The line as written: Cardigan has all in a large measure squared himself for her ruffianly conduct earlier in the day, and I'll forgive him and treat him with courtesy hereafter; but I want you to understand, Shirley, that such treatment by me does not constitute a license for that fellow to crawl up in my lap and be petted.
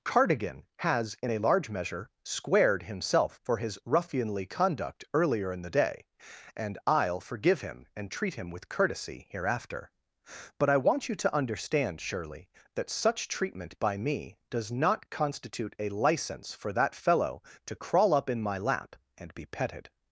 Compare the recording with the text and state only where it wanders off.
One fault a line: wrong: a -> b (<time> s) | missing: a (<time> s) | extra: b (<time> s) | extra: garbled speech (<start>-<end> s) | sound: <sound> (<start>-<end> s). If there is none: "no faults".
missing: all (1.1 s)
wrong: her -> his (3.6 s)